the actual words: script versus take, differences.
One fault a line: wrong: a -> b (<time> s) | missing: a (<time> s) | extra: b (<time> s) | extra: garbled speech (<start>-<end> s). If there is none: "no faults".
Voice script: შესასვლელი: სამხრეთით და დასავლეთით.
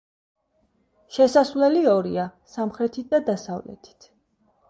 extra: ორია (1.9 s)